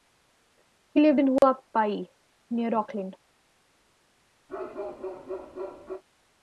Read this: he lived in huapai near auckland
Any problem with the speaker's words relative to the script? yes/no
no